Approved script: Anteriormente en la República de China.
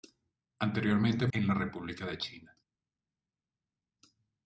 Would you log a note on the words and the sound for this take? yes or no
no